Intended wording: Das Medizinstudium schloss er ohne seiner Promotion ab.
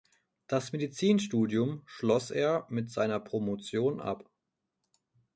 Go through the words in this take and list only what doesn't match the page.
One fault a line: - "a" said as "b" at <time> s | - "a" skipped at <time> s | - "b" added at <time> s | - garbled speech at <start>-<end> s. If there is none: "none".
- "ohne" said as "mit" at 2.7 s